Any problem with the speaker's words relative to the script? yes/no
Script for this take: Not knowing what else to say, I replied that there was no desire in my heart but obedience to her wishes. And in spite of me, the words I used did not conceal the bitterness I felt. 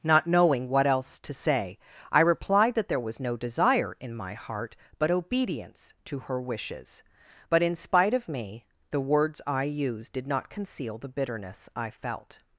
yes